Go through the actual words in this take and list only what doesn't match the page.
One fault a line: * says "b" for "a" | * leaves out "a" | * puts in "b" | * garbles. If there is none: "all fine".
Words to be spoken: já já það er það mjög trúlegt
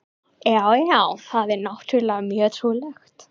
* says "náttúrlega" for "það"